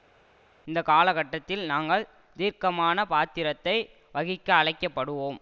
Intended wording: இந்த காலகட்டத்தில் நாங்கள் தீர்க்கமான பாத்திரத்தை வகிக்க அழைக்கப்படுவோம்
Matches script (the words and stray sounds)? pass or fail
pass